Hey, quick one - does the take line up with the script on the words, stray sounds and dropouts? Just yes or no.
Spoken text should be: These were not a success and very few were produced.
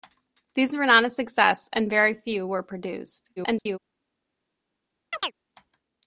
no